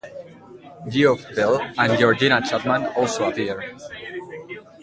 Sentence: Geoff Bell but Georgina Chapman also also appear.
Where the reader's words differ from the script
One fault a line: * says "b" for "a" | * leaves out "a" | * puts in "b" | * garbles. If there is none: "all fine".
* says "and" for "but"
* leaves out "also"